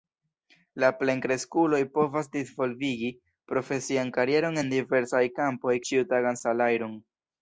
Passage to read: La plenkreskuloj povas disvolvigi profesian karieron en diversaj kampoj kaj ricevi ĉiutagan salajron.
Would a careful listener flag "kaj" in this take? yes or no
yes